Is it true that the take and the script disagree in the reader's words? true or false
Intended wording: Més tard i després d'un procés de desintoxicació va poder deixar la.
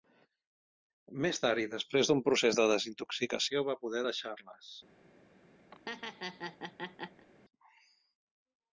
true